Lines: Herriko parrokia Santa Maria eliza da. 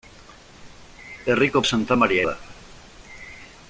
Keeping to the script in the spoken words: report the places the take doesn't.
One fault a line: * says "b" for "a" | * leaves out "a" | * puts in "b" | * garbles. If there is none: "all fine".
* leaves out "parrokia"
* leaves out "eliza"